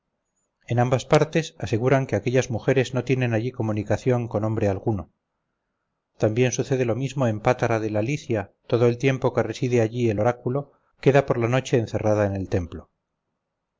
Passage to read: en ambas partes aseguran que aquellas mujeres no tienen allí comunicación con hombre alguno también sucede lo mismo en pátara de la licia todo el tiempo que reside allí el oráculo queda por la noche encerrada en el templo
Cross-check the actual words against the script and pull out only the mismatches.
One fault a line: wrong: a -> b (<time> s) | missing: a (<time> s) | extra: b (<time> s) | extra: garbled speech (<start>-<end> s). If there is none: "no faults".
no faults